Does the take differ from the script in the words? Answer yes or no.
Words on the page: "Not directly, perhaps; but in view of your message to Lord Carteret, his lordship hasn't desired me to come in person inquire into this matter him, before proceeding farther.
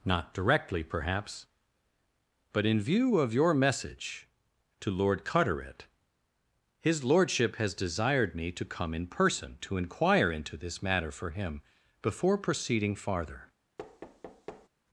yes